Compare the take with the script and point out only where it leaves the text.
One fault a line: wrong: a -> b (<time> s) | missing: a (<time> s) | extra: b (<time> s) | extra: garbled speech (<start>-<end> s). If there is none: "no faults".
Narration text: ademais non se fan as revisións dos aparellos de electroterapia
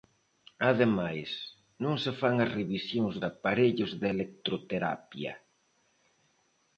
missing: dos (3.1 s)